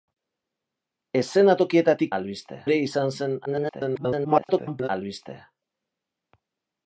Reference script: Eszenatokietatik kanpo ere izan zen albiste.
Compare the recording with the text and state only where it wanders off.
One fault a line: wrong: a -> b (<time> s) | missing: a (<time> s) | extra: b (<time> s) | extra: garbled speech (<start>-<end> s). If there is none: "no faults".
wrong: kanpo -> albiste (2.2 s)
extra: garbled speech (3.5-4.9 s)